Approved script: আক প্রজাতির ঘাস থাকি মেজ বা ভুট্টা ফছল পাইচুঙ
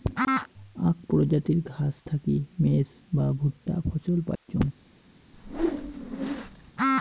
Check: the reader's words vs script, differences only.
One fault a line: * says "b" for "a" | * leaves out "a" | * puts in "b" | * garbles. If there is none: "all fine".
all fine